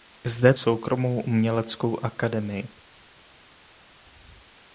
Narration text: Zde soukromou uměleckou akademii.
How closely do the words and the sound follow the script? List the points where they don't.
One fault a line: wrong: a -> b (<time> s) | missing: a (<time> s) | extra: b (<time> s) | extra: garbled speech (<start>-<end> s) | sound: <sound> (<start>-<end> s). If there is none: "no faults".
no faults